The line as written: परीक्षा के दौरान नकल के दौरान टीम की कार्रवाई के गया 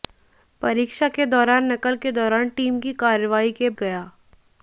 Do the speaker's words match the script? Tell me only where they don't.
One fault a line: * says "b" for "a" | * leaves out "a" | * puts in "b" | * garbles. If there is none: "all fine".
all fine